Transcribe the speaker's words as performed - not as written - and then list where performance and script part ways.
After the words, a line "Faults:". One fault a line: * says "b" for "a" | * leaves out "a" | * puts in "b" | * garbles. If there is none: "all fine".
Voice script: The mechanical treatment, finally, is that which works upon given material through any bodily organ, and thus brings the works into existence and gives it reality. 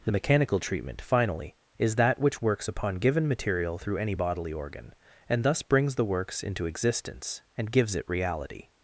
The mechanical treatment, finally, is that which works upon given material through any bodily organ, and thus brings the works into existence and gives it reality.
Faults:
all fine